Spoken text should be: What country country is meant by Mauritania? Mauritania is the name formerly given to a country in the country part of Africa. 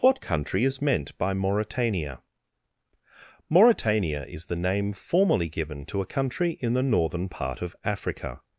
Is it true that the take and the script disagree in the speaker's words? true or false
true